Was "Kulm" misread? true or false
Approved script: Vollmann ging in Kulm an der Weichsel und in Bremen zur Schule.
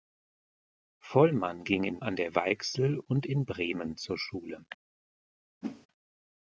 true